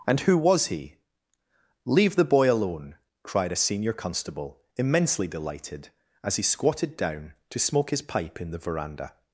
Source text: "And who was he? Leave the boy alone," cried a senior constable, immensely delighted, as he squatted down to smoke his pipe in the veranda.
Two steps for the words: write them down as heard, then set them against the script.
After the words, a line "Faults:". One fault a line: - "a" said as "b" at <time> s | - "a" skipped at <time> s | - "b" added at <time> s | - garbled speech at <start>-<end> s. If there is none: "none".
"And who was he? Leave the boy alone," cried a senior constable, immensely delighted, as he squatted down to smoke his pipe in the veranda.
Faults:
none